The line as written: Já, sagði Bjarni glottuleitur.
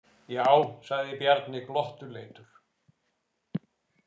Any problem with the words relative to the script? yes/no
no